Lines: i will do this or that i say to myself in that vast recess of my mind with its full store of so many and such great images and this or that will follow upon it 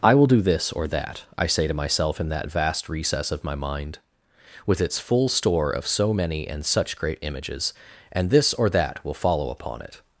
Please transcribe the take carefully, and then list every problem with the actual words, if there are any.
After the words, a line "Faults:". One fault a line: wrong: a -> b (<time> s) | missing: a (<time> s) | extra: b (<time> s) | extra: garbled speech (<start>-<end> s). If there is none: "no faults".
i will do this or that i say to myself in that vast recess of my mind with its full store of so many and such great images and this or that will follow upon it
Faults:
no faults